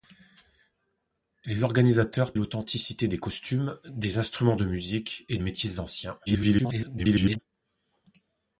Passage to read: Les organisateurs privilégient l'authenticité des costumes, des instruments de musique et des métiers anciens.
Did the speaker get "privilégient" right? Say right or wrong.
wrong